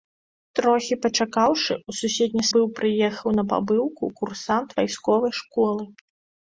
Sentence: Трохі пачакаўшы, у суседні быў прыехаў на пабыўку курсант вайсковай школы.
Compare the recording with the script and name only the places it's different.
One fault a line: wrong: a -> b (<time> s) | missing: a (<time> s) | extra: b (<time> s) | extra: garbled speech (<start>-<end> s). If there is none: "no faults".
no faults